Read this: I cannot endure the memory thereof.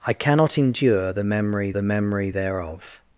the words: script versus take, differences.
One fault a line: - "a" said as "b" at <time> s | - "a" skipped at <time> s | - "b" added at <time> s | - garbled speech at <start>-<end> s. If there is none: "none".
- "the memory" added at 1.7 s